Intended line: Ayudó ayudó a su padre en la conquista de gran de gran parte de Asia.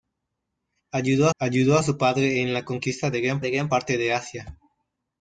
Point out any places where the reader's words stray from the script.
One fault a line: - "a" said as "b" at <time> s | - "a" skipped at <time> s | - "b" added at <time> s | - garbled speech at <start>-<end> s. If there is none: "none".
none